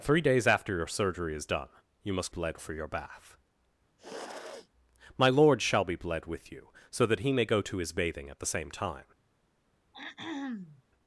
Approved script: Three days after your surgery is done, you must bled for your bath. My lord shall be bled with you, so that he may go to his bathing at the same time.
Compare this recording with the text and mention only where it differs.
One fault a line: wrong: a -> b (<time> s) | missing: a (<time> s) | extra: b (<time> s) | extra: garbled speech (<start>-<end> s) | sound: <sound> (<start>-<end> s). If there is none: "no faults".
sound: sniff (4.0-4.7 s)
sound: throat clearing (9.9-10.8 s)